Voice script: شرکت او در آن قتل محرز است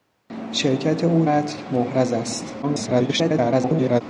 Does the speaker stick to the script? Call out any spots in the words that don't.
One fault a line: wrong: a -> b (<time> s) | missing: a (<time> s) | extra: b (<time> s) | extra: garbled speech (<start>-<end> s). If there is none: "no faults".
missing: در آن (1.2 s)
extra: garbled speech (2.6-4.0 s)